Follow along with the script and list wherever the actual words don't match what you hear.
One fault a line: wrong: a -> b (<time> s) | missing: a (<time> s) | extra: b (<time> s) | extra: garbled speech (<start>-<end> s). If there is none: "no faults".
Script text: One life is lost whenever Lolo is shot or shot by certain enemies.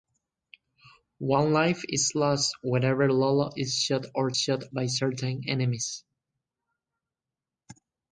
no faults